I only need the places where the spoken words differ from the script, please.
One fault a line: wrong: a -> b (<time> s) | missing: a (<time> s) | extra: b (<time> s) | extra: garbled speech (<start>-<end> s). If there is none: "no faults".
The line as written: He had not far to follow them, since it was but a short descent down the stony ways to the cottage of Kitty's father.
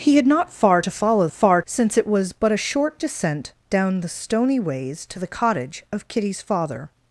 wrong: them -> far (1.3 s)